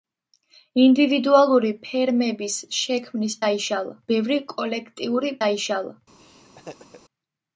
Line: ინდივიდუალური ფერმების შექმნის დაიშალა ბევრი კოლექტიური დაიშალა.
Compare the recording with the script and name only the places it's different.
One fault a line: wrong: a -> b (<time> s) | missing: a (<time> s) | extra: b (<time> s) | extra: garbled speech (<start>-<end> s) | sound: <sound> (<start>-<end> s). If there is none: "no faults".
sound: laugh (6.2-7.0 s)